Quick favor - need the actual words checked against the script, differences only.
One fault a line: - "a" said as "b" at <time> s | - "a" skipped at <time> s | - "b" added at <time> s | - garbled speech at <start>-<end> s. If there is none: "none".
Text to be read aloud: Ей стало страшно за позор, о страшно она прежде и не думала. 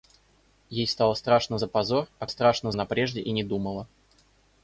none